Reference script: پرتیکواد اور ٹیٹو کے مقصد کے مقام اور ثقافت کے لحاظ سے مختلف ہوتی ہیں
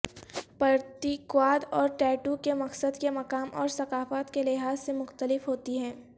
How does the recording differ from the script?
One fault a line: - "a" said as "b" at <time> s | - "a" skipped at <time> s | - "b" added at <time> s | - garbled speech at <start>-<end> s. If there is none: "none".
none